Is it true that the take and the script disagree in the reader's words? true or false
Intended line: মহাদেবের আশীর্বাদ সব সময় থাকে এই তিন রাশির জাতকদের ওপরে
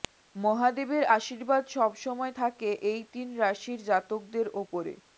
false